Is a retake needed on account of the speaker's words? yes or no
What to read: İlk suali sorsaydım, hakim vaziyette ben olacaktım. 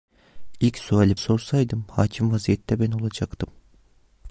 no